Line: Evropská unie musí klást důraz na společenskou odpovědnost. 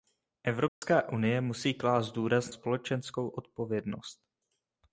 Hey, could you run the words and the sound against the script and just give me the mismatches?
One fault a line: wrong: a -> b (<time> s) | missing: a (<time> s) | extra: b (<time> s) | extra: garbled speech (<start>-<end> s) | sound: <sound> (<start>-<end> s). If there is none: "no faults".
sound: dropout (0.7-0.8 s)
missing: na (2.5 s)